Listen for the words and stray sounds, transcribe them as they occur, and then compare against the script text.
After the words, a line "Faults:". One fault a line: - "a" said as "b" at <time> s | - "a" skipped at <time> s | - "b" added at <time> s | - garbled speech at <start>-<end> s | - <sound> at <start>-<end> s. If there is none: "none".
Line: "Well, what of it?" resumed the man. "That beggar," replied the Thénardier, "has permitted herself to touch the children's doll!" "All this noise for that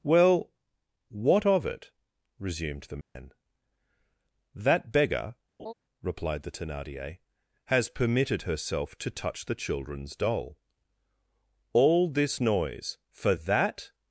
"Well, what of it?" resumed the man. "That beggar," replied the Thénardier, "has permitted herself to touch the children's doll!" "All this noise for that
Faults:
- dropout at 3.0-3.2 s
- laugh at 5.6-5.7 s